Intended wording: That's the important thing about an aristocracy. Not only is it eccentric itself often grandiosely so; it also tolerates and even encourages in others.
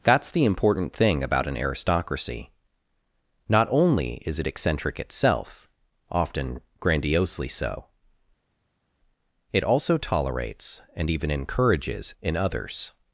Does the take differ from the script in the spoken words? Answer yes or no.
no